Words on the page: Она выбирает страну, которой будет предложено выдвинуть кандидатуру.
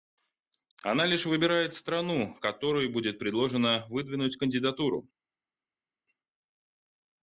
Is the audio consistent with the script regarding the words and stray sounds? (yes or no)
no